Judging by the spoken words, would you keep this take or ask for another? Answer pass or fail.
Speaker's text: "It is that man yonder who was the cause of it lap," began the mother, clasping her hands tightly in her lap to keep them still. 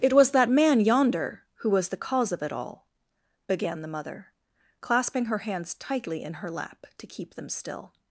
fail